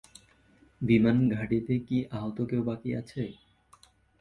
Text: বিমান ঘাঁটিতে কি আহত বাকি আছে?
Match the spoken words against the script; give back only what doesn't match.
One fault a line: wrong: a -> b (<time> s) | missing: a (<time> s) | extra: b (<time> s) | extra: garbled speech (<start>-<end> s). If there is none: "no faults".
extra: কেউ (2.5 s)